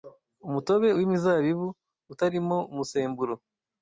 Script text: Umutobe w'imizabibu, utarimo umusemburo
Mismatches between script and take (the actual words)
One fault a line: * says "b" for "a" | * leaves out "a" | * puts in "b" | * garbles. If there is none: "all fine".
all fine